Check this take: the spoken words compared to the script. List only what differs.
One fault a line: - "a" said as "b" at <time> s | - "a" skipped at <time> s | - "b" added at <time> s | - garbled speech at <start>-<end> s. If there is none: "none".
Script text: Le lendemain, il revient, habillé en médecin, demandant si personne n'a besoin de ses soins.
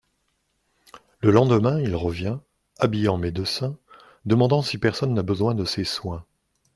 none